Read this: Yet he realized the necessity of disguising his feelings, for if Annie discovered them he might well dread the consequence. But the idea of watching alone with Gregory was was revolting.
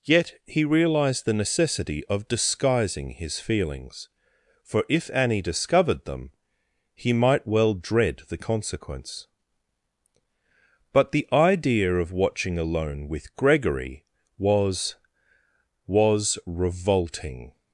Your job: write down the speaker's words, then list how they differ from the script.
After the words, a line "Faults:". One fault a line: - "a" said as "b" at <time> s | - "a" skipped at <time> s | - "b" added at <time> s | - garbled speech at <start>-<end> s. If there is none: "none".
Yet he realized the necessity of disguising his feelings, for if Annie discovered them he might well dread the consequence. But the idea of watching alone with Gregory was was revolting.
Faults:
none